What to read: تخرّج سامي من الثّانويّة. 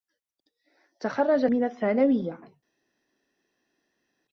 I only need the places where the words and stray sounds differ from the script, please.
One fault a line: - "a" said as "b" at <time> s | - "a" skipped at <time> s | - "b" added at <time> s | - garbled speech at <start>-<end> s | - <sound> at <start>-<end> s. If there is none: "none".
- "سامي" skipped at 1.5 s